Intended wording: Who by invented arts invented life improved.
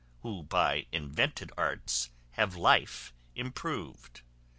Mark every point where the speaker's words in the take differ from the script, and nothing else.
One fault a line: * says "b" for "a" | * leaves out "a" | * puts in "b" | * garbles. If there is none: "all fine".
* says "have" for "invented"